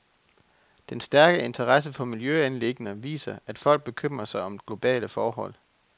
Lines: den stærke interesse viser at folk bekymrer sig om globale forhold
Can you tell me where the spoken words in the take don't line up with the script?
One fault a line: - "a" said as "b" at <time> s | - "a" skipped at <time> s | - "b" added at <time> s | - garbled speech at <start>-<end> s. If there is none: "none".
- "for miljøanliggender" added at 1.9 s